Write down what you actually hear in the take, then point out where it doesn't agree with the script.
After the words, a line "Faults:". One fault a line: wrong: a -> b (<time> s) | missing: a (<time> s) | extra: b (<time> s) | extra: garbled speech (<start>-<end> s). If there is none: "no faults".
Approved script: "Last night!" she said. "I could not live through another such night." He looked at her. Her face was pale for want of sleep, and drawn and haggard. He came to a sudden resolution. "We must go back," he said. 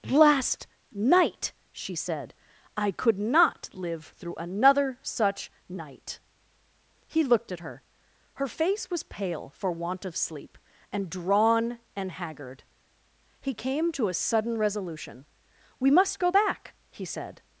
"Last night!" she said. "I could not live through another such night." He looked at her. Her face was pale for want of sleep, and drawn and haggard. He came to a sudden resolution. "We must go back," he said.
Faults:
no faults